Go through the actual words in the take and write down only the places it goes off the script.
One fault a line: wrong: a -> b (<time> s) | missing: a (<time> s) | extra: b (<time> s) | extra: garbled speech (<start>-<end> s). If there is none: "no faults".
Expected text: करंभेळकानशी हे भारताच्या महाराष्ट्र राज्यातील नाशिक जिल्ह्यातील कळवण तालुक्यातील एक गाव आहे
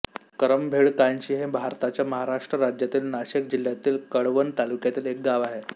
no faults